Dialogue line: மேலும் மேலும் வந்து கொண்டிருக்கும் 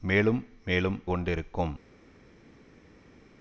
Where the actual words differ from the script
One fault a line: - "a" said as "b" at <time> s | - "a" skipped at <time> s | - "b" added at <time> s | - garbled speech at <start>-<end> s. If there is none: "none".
- "வந்து" skipped at 1.0 s